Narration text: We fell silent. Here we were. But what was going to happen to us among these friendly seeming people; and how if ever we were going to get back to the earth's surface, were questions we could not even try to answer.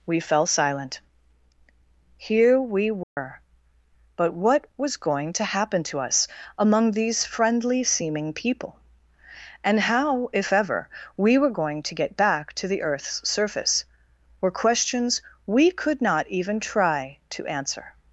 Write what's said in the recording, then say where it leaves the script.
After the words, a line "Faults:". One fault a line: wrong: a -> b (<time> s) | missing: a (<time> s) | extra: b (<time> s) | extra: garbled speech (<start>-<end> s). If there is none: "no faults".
We fell silent. Here we were. But what was going to happen to us among these friendly seeming people; and how if ever we were going to get back to the earth's surface, were questions we could not even try to answer.
Faults:
no faults